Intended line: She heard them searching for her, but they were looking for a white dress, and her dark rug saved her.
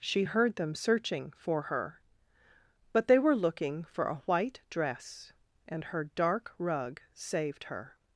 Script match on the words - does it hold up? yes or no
yes